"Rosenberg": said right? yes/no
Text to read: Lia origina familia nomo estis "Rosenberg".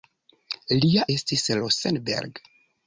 yes